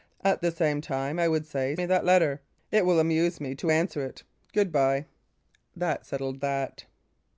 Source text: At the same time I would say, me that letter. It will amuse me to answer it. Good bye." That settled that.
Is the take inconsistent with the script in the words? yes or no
no